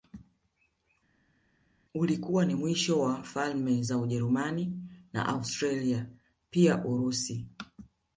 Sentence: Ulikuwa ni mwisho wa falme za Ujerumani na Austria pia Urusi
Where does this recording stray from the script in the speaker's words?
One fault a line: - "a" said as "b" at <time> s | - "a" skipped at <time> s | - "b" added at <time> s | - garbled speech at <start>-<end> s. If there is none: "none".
none